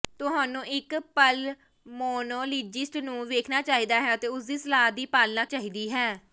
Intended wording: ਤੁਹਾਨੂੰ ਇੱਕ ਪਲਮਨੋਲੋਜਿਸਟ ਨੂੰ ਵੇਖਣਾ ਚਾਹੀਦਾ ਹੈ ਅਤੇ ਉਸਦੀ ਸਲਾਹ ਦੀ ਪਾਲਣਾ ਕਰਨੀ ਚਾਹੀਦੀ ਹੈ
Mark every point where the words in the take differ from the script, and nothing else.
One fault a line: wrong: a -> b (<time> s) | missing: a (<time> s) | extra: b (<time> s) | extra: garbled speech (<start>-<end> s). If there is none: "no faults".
missing: ਕਰਨੀ (5.5 s)